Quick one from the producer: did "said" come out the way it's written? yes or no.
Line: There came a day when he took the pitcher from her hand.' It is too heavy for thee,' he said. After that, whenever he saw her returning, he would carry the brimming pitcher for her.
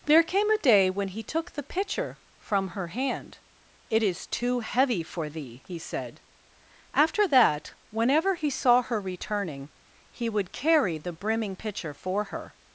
yes